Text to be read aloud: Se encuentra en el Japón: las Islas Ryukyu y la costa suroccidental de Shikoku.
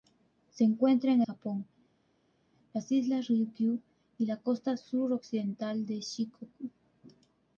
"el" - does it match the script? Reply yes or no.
no